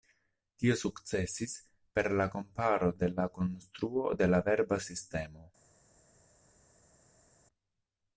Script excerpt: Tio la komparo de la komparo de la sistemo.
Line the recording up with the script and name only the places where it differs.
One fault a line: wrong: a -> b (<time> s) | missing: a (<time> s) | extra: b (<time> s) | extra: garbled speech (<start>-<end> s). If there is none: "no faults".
extra: sukcesis per (0.8 s)
wrong: komparo -> konstruo (3.4 s)
extra: verba (4.5 s)